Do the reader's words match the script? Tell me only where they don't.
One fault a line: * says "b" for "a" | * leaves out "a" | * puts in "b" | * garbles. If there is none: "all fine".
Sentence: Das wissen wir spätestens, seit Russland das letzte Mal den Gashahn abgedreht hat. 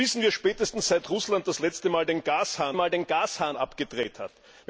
* puts in "Mal den Gashahn"